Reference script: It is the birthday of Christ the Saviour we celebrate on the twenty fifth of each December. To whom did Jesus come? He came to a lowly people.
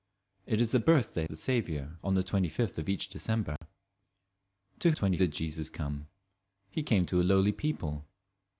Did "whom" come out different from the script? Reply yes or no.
yes